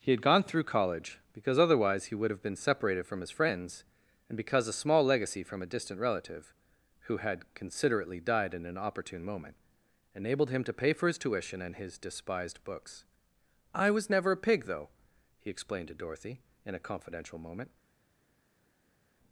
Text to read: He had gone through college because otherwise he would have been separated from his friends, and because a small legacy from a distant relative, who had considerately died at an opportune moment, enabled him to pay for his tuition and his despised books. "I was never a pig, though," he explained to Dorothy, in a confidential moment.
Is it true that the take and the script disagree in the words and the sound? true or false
true